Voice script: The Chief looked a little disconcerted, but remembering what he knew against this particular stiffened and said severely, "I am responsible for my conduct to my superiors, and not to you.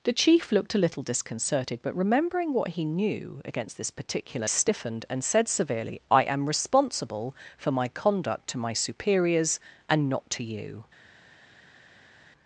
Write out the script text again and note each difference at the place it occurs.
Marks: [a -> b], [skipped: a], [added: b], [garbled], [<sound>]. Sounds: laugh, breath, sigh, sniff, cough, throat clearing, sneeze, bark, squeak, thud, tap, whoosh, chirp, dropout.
The Chief looked a little disconcerted, but remembering what he knew against this particular stiffened and said severely, "I am responsible for my conduct to my superiors, and not to you.